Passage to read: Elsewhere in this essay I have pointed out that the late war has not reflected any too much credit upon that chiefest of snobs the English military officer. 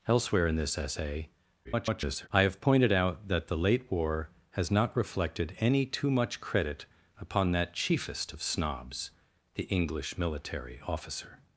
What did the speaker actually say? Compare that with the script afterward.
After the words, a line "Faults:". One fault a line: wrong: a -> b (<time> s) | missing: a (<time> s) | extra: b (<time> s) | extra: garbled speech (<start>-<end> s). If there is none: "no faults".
Elsewhere in this essay [garbled] I have pointed out that the late war has not reflected any too much credit upon that chiefest of snobs the English military officer.
Faults:
extra: garbled speech (1.6-2.3 s)